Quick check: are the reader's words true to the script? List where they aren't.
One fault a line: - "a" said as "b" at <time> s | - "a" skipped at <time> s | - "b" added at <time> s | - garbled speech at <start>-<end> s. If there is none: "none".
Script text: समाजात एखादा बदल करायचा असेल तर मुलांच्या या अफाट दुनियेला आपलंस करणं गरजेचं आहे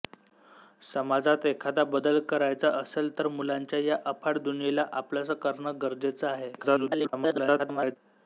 - garbled speech at 6.6-8.0 s